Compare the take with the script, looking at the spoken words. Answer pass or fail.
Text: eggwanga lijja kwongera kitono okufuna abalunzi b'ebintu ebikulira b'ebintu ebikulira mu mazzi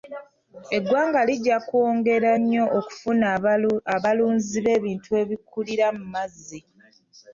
fail